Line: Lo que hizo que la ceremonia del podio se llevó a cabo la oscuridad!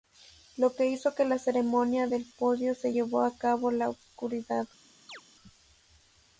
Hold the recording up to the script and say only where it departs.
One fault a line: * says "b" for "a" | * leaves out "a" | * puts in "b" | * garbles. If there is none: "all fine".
all fine